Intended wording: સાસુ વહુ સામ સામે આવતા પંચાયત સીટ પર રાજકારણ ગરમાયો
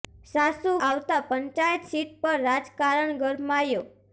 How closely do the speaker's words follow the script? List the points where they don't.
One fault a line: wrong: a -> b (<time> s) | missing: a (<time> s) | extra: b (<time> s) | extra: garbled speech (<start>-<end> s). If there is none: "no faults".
missing: વહુ સામ સામે (0.7 s)